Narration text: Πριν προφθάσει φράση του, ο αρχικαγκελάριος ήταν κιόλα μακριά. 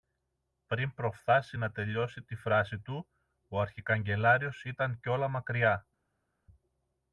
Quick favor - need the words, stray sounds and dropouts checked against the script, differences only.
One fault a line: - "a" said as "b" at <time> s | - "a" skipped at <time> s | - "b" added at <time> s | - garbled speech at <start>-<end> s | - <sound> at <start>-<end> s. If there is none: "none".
- "να τελειώσει τη" added at 1.5 s